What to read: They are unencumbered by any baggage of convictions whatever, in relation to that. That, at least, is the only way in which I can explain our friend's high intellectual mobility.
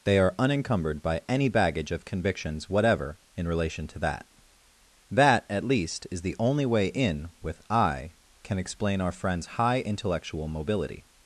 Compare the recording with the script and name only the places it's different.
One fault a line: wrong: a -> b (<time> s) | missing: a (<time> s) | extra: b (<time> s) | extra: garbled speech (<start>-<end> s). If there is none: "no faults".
wrong: which -> with (7.4 s)